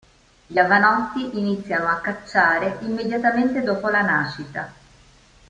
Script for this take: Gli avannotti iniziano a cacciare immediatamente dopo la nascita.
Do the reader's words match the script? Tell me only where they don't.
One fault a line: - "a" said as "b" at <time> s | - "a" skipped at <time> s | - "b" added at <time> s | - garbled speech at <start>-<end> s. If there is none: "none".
none